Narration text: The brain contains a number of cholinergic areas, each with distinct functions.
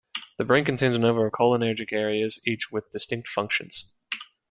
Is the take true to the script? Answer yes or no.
yes